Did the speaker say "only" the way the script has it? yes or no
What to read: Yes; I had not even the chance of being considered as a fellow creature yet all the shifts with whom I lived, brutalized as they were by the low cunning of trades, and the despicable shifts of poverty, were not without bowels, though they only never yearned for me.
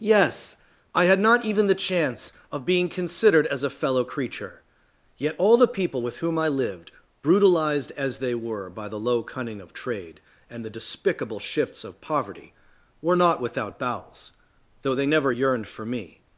no